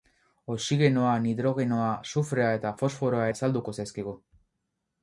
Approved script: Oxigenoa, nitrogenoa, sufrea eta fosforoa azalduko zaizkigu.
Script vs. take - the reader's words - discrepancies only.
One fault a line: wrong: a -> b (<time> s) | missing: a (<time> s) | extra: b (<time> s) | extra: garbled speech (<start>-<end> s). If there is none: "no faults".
no faults